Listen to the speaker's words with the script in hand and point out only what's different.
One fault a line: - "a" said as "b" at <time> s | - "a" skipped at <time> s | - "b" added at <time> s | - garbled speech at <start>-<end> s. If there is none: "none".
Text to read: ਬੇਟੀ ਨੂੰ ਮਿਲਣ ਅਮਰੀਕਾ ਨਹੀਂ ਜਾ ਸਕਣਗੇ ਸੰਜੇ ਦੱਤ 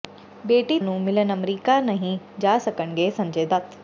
none